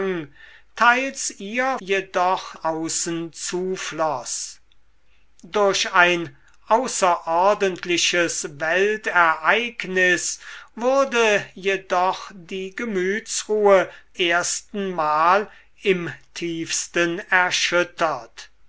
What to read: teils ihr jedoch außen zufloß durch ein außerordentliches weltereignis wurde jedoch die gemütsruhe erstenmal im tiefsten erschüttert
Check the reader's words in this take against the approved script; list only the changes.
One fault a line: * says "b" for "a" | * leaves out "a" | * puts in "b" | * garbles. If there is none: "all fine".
all fine